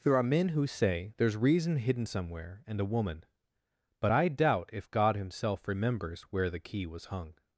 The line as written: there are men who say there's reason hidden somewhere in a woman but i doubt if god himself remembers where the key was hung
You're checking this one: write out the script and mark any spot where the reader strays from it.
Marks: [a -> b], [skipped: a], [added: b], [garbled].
there are men who say there's reason hidden somewhere [in -> and] a woman but i doubt if god himself remembers where the key was hung